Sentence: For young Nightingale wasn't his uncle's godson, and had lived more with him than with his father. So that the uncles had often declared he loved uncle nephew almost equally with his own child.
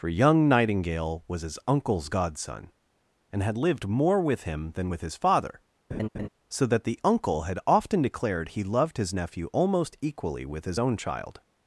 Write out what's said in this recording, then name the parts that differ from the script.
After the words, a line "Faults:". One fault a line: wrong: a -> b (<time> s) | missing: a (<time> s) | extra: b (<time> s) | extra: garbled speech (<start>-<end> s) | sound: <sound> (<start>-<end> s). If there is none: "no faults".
For young Nightingale was his uncle's godson, and had lived more with him than with his father. So that the uncle had often declared he loved his nephew almost equally with his own child.
Faults:
wrong: wasn't -> was (1.3 s)
sound: laugh (5.9-6.3 s)
wrong: uncles -> uncle (7.0 s)
wrong: uncle -> his (9.0 s)